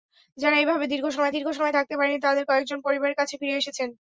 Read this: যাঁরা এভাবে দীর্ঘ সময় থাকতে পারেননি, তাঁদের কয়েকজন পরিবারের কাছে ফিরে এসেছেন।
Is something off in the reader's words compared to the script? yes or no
yes